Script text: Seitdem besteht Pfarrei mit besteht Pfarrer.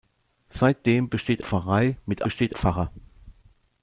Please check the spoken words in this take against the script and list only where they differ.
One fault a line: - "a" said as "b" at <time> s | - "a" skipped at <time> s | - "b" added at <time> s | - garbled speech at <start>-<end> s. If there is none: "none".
none